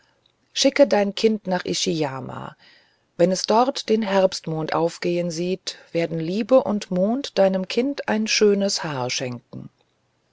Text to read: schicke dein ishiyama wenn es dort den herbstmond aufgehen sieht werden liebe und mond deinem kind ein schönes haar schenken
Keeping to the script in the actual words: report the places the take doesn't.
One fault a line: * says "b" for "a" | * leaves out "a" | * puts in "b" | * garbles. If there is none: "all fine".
* puts in "kind nach"